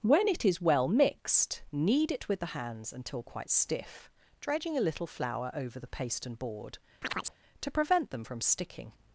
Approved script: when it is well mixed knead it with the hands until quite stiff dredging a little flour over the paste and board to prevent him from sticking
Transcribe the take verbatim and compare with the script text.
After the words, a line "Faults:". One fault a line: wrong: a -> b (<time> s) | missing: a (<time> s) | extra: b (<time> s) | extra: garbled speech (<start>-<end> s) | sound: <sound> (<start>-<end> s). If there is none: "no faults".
when it is well mixed knead it with the hands until quite stiff dredging a little flour over the paste and board to prevent them from sticking
Faults:
sound: chirp (7.0-7.4 s)
wrong: him -> them (8.1 s)